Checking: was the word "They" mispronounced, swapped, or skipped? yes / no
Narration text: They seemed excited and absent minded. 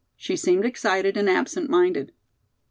yes